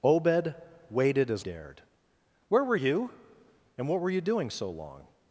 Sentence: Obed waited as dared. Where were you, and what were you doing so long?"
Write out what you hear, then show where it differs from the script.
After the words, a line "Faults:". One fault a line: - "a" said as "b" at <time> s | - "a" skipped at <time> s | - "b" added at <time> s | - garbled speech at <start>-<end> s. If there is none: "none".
Obed waited as dared. Where were you, and what were you doing so long?"
Faults:
none